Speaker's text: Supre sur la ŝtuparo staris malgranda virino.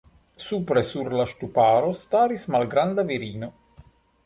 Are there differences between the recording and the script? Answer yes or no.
no